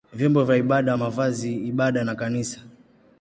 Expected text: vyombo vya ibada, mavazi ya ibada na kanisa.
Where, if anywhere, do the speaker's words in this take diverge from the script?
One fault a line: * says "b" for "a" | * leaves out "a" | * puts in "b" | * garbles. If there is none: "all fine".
all fine